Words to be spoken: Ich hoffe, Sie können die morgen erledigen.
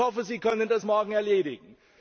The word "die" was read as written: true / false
false